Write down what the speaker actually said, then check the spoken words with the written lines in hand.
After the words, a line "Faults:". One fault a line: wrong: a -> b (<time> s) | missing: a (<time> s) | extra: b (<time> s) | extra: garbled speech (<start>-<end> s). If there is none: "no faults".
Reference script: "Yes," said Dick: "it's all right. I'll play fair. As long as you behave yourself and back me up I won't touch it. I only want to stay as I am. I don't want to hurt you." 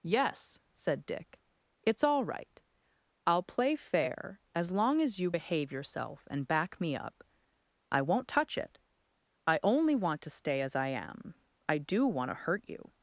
"Yes," said Dick: "it's all right. I'll play fair. As long as you behave yourself and back me up I won't touch it. I only want to stay as I am. I do want to hurt you."
Faults:
wrong: don't -> do (11.8 s)